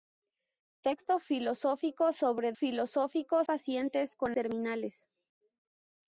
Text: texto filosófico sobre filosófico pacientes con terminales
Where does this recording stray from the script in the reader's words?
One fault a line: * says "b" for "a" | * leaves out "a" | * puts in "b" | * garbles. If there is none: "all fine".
all fine